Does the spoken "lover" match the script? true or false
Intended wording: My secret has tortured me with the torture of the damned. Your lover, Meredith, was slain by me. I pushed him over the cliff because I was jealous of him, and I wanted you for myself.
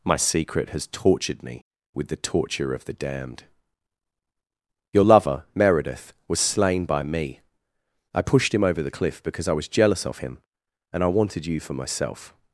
true